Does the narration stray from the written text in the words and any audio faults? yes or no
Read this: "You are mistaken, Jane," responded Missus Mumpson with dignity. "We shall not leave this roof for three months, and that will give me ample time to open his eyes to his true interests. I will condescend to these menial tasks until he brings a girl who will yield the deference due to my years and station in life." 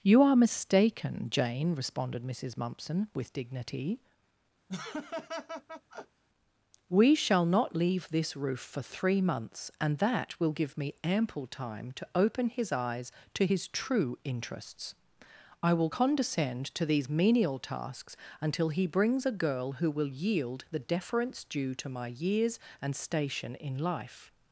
yes